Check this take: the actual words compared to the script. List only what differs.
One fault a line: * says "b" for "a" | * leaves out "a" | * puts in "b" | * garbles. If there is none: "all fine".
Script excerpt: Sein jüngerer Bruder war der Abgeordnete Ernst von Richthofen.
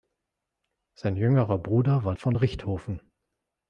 * leaves out "der Abgeordnete Ernst"